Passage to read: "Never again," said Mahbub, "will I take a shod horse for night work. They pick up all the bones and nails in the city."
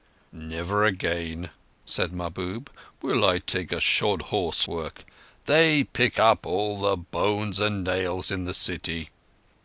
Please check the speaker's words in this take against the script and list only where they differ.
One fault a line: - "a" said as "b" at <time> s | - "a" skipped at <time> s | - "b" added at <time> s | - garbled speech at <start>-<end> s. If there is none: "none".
- "for night" skipped at 4.6 s